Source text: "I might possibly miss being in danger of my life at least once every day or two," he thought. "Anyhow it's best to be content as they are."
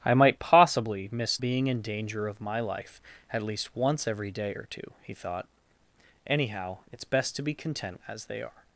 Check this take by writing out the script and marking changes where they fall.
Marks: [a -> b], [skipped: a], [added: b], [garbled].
"I might possibly miss being in danger of my life at least once every day or two," he thought. "Anyhow it's best to be content as they are."